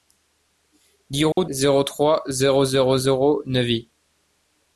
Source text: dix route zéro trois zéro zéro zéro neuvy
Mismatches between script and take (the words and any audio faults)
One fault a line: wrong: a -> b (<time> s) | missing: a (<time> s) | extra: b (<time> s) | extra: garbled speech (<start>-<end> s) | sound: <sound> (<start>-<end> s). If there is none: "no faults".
sound: dropout (1.3-1.4 s)